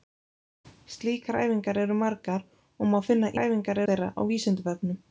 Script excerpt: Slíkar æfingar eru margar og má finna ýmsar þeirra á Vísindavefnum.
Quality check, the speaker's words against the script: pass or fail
fail